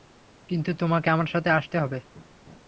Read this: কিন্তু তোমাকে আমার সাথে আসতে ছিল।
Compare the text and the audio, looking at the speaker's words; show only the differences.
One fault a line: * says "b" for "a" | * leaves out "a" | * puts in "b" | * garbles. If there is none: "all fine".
* says "হবে" for "ছিল"